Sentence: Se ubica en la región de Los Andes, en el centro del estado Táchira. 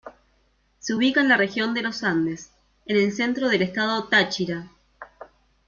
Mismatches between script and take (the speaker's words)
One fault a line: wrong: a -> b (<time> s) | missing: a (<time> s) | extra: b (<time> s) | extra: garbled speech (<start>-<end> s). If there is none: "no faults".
no faults